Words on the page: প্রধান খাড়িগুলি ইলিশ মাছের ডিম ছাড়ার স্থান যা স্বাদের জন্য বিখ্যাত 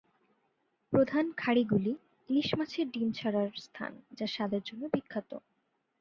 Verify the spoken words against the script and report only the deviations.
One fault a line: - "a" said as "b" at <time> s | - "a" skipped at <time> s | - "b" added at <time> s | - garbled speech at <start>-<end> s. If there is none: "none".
none